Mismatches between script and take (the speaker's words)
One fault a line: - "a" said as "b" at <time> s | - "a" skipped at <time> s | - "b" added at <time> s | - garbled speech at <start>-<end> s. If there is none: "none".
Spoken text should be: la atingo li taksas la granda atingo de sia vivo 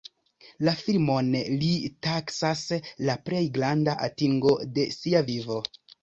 - "atingo" said as "filmon" at 0.8 s
- "plej" added at 3.3 s